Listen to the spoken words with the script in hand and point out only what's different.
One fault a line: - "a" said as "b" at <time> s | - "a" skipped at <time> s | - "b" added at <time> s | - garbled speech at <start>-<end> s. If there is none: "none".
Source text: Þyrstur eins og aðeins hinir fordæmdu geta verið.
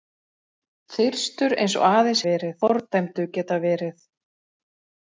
- "hinir" said as "verið" at 2.3 s